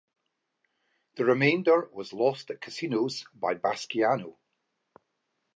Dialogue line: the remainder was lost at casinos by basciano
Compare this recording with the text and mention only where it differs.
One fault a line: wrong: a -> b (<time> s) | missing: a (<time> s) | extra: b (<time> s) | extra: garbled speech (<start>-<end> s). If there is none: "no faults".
no faults